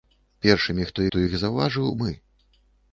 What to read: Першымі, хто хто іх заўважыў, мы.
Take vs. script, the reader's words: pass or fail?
pass